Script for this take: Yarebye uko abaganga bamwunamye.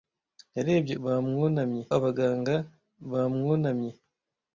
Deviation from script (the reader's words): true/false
true